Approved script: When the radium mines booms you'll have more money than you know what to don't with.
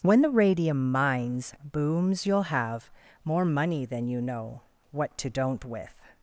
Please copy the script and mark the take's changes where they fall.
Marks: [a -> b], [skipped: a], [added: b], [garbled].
When the radium mines booms you'll have more money than you know what to don't with.